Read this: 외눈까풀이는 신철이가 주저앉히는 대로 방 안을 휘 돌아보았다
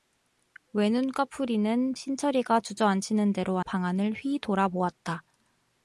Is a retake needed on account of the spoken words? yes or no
no